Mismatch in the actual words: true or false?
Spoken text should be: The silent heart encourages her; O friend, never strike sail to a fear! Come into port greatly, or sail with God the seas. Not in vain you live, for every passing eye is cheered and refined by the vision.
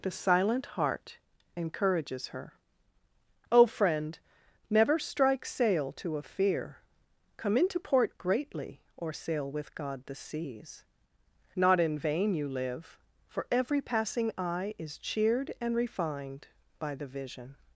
false